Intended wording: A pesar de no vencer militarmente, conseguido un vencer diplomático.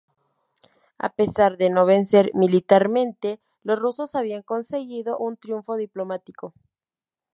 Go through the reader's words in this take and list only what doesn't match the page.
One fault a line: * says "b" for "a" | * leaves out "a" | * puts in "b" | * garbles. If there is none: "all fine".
* puts in "los rusos habían"
* says "triunfo" for "vencer"